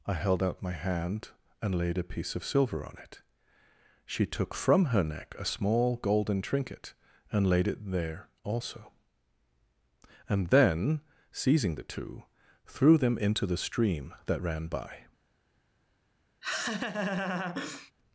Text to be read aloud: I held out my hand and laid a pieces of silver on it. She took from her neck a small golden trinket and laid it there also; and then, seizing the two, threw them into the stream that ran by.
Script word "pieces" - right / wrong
wrong